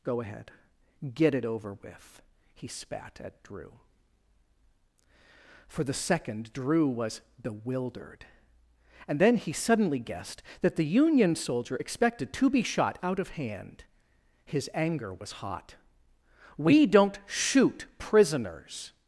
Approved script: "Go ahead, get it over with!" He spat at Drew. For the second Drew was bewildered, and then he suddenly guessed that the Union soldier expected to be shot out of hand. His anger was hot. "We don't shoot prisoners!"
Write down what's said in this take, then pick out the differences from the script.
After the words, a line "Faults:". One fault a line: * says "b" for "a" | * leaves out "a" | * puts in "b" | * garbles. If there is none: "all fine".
"Go ahead, get it over with!" He spat at Drew. For the second Drew was bewildered, and then he suddenly guessed that the Union soldier expected to be shot out of hand. His anger was hot. "We don't shoot prisoners!"
Faults:
all fine